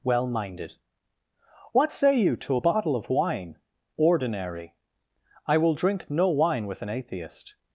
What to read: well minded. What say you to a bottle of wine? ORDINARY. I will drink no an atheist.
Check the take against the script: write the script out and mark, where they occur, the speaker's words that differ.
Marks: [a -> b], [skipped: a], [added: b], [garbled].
well minded. What say you to a bottle of wine? ORDINARY. I will drink no [added: wine with] an atheist.